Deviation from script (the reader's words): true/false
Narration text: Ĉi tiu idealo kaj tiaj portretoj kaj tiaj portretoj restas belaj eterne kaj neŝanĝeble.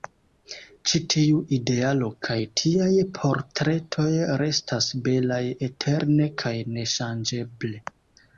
true